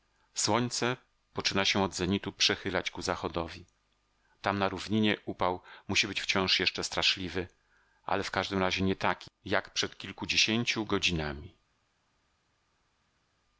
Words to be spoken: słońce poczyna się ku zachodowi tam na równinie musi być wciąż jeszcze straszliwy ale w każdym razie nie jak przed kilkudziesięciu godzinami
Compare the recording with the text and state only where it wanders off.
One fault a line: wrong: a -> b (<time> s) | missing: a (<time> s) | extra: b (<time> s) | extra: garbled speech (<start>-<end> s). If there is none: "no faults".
extra: od zenitu przechylać (1.8 s)
extra: upał (5.2 s)
extra: taki (8.9 s)